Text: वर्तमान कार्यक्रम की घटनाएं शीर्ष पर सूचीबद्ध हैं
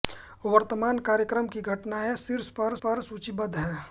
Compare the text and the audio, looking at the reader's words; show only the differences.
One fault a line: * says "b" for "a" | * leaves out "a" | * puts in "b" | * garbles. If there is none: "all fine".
* puts in "पर"